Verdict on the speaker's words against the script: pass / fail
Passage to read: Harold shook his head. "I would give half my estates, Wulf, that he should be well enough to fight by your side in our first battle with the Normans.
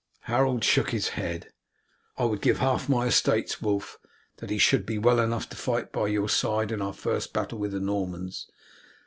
pass